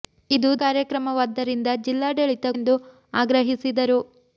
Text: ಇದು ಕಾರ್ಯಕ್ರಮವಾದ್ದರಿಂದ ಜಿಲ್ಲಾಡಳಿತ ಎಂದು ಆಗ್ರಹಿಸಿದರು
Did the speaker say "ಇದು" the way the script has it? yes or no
yes